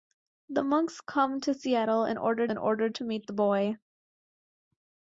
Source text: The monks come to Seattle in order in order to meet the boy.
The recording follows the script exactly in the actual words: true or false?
true